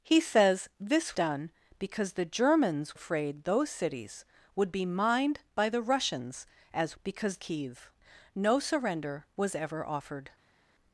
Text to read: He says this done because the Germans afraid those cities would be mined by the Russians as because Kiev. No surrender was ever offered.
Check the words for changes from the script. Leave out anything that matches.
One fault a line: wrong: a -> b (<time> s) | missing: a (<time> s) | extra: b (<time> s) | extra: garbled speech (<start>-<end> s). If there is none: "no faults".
no faults